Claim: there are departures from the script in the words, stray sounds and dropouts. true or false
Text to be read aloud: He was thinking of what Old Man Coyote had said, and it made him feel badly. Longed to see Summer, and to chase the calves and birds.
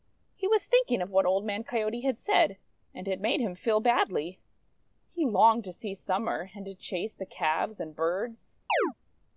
true